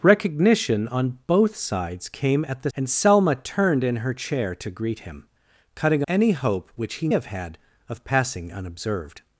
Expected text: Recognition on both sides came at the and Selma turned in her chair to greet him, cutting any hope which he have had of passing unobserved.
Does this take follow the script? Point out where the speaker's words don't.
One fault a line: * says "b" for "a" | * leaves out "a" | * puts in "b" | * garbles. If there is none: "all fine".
all fine